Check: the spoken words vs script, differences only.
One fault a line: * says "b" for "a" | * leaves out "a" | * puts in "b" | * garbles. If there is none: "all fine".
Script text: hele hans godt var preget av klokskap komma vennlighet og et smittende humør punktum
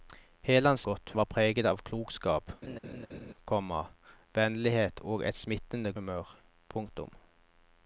all fine